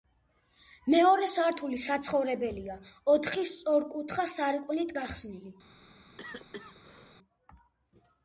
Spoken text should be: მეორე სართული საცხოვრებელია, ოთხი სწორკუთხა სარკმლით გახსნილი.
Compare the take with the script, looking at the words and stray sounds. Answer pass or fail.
fail